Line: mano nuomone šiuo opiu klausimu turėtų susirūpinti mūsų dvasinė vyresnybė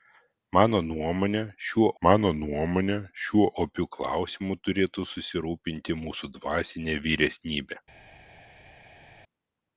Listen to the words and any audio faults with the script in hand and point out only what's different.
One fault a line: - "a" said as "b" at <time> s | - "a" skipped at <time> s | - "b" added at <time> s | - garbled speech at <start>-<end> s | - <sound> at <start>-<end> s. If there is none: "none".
- "mano nuomone šiuo" added at 2.0 s